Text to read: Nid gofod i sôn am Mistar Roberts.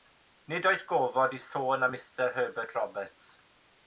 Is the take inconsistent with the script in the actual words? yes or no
yes